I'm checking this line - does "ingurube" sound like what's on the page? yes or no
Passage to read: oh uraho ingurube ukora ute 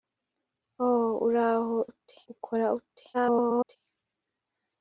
no